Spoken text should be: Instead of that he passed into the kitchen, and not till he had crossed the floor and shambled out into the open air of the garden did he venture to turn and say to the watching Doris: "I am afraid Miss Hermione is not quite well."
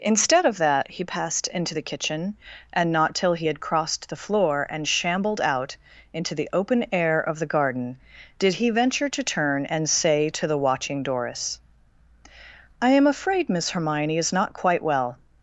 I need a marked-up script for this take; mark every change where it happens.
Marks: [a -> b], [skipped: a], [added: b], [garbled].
Instead of that he passed into the kitchen, and not till he had crossed the floor and shambled out into the open air of the garden did he venture to turn and say to the watching Doris: "I am afraid Miss Hermione is not quite well."